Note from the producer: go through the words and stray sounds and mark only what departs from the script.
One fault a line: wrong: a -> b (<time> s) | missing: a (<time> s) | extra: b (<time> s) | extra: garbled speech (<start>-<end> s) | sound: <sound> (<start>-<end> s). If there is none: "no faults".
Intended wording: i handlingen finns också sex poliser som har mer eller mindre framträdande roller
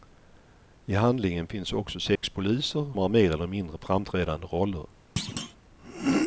sound: dropout (2.2-2.2 s)
missing: som (2.9 s)
sound: thud (5.2-5.6 s)